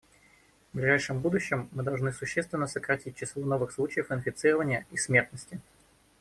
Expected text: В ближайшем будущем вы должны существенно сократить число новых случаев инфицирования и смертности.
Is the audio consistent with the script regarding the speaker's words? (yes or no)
no